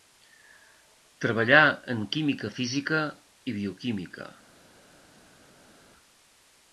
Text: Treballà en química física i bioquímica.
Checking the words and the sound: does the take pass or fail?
pass